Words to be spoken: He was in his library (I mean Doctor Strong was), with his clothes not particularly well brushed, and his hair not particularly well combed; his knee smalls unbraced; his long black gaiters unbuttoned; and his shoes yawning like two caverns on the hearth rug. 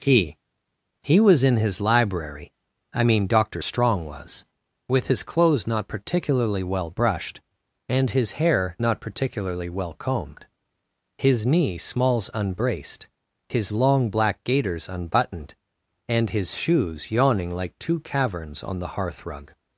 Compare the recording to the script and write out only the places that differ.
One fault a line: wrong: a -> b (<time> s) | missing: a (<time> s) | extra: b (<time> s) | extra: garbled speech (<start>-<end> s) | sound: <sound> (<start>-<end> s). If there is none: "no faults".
extra: he (1.0 s)